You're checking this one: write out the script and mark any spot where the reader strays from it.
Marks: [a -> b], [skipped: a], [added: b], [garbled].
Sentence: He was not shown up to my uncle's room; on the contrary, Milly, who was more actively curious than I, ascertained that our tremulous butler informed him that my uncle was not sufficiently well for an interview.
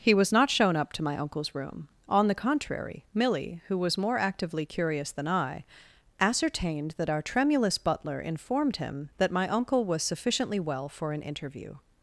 He was not shown up to my uncle's room; on the contrary, Milly, who was more actively curious than I, ascertained that our tremulous butler informed him that my uncle was [skipped: not] sufficiently well for an interview.